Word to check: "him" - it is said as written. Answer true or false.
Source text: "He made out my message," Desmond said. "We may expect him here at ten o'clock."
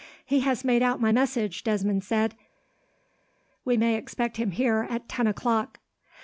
true